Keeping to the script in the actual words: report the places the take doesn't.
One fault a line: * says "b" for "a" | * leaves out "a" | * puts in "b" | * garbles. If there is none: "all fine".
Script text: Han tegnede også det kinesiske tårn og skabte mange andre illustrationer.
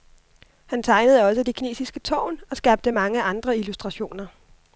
all fine